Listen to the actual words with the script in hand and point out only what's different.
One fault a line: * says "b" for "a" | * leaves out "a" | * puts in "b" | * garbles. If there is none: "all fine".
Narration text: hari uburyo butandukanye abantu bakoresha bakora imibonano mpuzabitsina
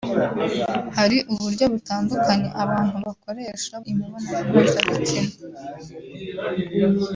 * leaves out "bakora"